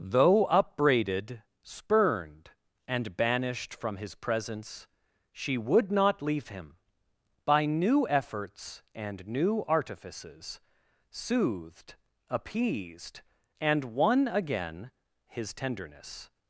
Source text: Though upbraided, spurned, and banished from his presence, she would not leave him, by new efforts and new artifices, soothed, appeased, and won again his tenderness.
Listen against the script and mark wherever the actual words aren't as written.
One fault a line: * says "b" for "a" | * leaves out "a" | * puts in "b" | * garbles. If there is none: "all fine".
all fine